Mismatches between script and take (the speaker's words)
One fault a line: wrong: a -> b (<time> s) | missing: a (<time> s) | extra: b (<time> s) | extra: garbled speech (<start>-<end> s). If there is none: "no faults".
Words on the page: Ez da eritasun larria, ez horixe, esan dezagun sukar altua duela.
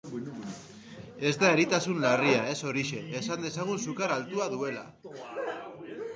no faults